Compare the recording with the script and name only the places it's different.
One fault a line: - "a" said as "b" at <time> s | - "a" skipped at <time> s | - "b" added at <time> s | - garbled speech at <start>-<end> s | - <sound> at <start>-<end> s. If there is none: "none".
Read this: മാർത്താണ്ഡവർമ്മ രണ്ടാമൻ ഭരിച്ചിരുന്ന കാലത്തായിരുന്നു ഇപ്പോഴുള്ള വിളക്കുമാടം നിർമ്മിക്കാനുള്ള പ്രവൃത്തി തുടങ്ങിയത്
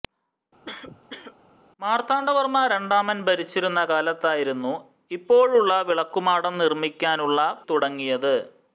- cough at 0.7-1.4 s
- "പ്രവൃത്തി" skipped at 7.4 s